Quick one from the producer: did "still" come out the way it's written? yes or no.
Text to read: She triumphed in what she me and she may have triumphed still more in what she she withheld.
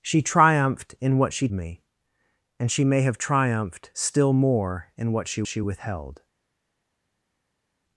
yes